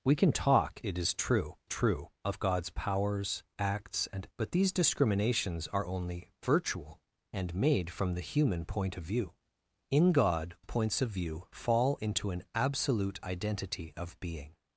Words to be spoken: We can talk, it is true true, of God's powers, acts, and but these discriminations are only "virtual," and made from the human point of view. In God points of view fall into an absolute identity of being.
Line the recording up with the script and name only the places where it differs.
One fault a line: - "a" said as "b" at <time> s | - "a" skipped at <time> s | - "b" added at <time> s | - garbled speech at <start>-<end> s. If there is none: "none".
none